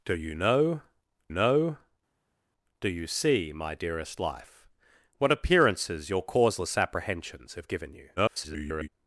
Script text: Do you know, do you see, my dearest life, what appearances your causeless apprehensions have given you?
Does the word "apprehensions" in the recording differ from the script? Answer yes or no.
no